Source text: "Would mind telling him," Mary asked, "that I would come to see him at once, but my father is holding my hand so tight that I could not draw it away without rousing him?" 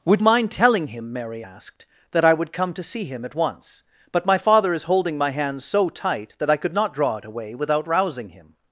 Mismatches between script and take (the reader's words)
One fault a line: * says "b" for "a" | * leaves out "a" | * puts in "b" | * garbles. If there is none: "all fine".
all fine